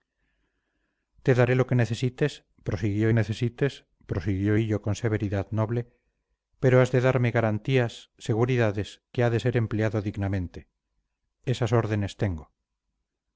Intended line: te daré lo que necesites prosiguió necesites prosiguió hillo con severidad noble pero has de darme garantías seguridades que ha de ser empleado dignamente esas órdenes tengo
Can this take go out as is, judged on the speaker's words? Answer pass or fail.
pass